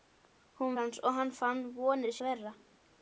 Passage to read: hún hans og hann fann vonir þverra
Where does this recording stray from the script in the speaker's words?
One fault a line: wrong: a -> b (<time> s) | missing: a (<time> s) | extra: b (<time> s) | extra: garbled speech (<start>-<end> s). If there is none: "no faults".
no faults